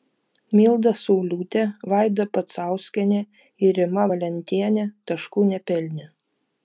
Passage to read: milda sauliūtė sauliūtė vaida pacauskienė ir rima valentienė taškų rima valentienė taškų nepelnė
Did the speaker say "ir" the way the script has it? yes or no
yes